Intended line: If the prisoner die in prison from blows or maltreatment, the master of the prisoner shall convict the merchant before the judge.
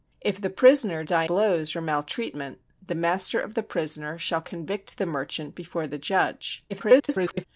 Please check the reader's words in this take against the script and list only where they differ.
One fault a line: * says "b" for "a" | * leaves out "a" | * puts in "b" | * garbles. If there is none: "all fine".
* leaves out "in prison from"
* garbles